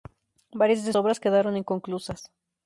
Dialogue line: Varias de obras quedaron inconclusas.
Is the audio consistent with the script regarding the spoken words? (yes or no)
yes